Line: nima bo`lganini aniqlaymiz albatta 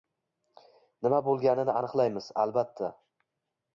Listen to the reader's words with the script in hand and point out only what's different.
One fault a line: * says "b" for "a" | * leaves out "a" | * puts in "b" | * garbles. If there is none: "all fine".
all fine